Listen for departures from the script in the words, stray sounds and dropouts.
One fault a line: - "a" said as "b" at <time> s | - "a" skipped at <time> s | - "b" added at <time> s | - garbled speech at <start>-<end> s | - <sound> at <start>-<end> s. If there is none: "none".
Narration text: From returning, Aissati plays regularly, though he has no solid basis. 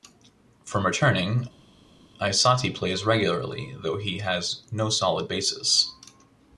none